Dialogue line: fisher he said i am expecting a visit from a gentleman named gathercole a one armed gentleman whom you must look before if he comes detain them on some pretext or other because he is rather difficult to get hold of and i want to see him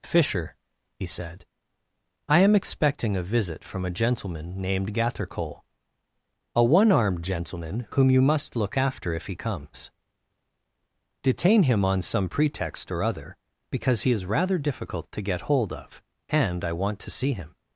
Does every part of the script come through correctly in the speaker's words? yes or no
no